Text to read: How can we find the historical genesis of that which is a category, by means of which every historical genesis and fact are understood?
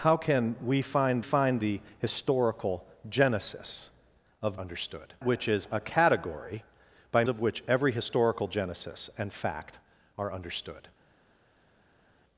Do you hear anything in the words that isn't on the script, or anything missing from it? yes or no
yes